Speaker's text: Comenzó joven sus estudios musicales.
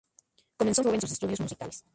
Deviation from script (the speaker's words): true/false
false